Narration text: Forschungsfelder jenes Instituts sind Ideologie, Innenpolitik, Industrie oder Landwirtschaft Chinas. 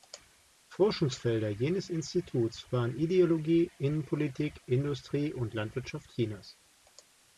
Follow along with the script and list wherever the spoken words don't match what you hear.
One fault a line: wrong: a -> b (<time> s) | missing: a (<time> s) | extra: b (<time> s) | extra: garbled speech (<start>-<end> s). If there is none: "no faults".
wrong: sind -> waren (2.7 s)
wrong: oder -> und (5.3 s)